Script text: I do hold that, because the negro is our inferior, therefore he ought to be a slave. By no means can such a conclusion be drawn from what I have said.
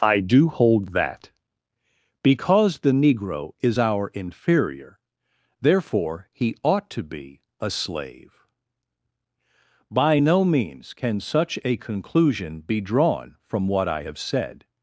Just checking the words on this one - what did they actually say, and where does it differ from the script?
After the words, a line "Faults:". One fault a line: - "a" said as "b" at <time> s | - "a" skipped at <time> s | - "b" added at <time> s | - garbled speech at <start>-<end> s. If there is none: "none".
I do hold that, because the negro is our inferior, therefore he ought to be a slave. By no means can such a conclusion be drawn from what I have said.
Faults:
none